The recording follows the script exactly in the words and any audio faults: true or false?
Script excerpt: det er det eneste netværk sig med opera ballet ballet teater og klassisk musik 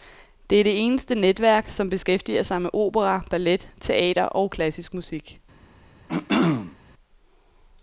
false